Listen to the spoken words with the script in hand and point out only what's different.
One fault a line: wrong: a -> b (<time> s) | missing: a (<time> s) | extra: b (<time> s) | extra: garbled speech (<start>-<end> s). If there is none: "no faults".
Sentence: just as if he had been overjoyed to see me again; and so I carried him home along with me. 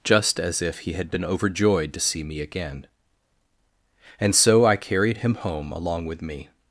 no faults